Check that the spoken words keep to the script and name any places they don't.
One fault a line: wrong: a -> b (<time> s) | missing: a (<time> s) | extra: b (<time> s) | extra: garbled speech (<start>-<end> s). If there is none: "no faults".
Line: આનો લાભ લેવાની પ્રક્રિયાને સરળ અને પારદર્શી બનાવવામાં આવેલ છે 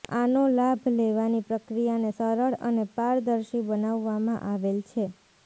no faults